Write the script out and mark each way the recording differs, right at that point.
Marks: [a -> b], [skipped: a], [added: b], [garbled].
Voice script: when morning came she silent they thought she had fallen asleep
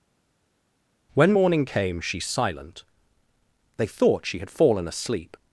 when morning came she silent they thought she had fallen asleep